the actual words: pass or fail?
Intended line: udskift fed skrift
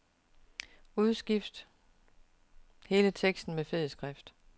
fail